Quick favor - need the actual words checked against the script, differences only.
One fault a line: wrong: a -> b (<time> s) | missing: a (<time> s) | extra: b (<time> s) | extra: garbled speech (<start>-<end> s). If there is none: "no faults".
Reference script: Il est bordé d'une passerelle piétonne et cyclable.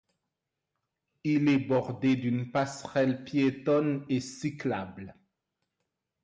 no faults